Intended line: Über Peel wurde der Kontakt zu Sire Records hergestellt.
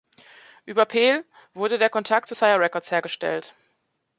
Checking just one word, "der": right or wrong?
right